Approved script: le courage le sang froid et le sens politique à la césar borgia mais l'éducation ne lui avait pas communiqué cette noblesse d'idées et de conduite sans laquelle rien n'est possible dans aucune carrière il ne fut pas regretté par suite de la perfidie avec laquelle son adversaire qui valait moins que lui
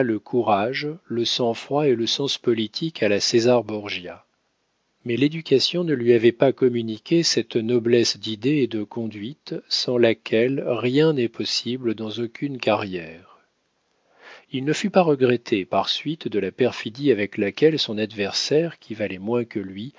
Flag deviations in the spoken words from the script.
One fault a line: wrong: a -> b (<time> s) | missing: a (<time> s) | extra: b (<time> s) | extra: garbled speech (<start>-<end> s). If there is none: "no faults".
no faults